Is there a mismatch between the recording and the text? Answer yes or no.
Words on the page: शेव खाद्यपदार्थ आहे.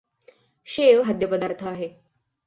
no